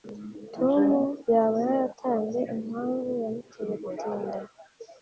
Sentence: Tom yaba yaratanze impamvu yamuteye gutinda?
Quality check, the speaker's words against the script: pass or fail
pass